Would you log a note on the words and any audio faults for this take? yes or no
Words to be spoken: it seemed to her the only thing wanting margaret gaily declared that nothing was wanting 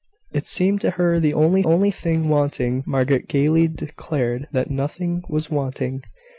yes